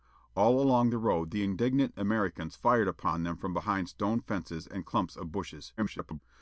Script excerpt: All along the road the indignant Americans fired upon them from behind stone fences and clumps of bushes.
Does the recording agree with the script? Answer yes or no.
no